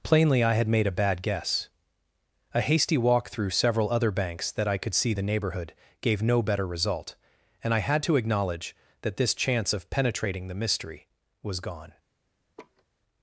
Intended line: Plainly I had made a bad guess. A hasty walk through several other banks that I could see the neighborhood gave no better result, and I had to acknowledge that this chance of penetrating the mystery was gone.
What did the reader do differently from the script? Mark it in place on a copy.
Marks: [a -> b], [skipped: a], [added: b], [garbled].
Plainly I had made a bad guess. A hasty walk through several other banks that I could see the neighborhood gave no better result, and I had to acknowledge that this chance of penetrating the mystery was gone.